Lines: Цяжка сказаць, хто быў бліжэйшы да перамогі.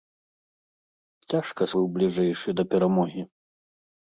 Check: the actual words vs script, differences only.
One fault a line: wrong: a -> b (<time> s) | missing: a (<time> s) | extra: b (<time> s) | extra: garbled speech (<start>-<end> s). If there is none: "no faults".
missing: сказаць хто (1.7 s)